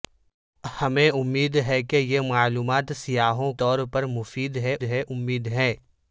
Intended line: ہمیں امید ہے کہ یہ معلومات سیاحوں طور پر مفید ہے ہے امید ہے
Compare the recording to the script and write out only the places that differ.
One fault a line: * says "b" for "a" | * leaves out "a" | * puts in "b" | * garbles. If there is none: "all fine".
all fine